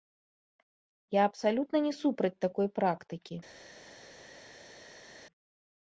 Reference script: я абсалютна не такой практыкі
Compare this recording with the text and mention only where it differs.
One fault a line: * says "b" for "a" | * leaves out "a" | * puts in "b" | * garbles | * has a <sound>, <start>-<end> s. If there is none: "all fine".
* puts in "супраць"